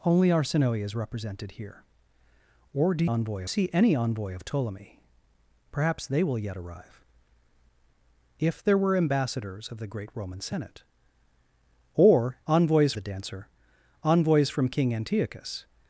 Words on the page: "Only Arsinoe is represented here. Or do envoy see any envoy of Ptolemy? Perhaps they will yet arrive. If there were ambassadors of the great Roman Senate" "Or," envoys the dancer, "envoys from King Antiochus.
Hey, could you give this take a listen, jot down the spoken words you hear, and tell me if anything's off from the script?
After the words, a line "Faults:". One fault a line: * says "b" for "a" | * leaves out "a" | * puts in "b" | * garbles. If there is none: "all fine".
"Only Arsinoe is represented here. Or do envoy see any envoy of Ptolemy? Perhaps they will yet arrive. If there were ambassadors of the great Roman Senate" "Or," envoys the dancer, "envoys from King Antiochus.
Faults:
all fine